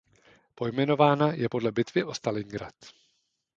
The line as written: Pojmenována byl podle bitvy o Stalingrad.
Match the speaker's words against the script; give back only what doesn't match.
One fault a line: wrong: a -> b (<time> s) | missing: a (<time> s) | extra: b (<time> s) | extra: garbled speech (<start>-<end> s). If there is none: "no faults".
wrong: byl -> je (1.3 s)